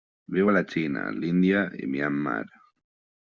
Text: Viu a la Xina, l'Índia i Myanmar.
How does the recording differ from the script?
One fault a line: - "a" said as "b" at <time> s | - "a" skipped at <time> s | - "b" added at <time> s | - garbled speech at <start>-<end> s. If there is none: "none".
none